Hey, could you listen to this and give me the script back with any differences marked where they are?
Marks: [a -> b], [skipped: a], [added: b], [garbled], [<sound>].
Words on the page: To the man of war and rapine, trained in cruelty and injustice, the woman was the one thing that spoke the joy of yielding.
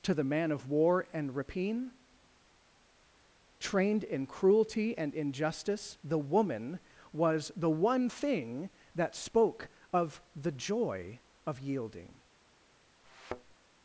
To the man of war and rapine, trained in cruelty and injustice, the woman was the one thing that spoke [added: of] the joy of yielding. [thud]